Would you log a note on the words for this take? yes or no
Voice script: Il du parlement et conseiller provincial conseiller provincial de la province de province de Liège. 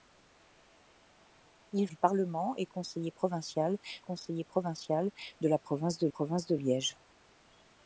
no